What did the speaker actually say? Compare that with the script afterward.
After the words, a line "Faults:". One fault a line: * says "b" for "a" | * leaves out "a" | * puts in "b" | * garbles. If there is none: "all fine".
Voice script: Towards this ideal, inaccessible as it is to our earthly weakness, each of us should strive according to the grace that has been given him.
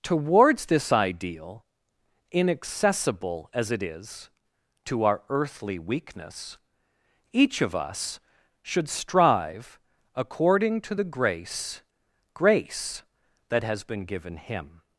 Towards this ideal, inaccessible as it is to our earthly weakness, each of us should strive according to the grace grace that has been given him.
Faults:
* puts in "grace"